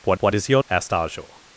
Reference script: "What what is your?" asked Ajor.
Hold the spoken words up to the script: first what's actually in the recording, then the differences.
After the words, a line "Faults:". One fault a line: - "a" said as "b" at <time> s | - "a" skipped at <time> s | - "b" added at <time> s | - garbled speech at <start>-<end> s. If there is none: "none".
"What what is your?" asked Ajor.
Faults:
none